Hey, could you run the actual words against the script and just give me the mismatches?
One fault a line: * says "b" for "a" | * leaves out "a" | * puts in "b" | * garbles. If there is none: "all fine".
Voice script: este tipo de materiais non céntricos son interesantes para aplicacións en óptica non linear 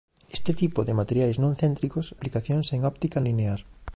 * leaves out "son interesantes para"
* leaves out "non"